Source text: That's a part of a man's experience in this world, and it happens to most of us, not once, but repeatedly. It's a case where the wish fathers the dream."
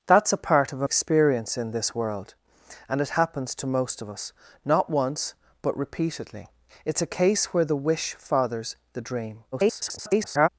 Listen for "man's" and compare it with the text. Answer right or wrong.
wrong